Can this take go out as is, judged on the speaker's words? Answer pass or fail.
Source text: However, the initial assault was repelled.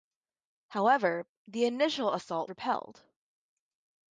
fail